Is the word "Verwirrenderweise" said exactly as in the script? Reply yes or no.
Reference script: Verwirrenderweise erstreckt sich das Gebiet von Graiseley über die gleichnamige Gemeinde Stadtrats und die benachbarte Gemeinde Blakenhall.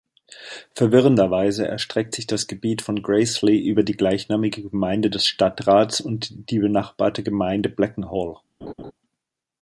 yes